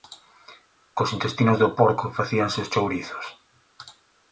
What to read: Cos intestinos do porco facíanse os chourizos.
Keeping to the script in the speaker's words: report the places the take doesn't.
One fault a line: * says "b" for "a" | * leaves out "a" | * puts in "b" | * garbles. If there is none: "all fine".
all fine